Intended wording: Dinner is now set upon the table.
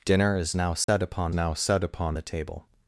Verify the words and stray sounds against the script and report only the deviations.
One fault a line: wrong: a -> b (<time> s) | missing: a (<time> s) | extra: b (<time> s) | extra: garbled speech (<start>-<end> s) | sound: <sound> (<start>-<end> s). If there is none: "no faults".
sound: dropout (0.8-0.9 s)
extra: now set upon (1.3 s)